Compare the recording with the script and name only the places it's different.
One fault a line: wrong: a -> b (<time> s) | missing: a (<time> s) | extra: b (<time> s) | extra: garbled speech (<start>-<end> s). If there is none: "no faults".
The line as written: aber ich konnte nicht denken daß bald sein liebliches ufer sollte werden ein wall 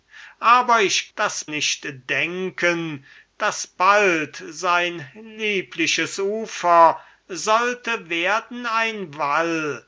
wrong: konnte -> daß (1.2 s)